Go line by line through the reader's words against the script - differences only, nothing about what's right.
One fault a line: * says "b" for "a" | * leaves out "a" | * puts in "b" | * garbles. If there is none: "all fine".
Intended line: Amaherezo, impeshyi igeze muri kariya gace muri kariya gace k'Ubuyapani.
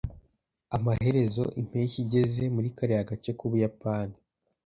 * leaves out "muri kariya gace"